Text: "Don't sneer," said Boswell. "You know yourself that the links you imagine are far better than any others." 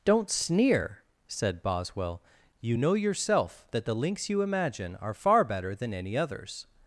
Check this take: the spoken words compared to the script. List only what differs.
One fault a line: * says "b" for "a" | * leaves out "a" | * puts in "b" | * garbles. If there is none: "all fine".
all fine